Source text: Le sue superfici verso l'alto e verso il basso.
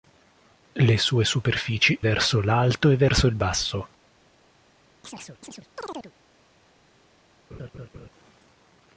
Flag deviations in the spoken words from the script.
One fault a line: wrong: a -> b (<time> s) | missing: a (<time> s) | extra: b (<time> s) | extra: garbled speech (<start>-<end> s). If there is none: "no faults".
no faults